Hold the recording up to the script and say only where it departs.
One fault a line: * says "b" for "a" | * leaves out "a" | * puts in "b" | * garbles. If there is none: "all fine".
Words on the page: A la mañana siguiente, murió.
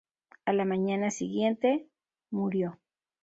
all fine